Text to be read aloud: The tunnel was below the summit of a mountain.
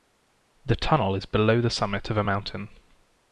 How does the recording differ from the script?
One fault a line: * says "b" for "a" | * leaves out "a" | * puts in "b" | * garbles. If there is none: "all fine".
* says "is" for "was"